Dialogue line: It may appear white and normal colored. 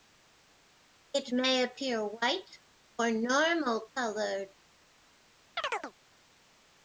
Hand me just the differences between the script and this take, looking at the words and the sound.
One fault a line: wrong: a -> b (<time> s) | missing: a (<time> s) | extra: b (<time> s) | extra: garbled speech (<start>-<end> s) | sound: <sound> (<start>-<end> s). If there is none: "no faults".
wrong: and -> or (3.0 s)
sound: chirp (5.6-5.9 s)